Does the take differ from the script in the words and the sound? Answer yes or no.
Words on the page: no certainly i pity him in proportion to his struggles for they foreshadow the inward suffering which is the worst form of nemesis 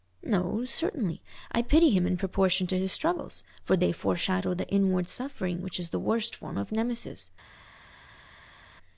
no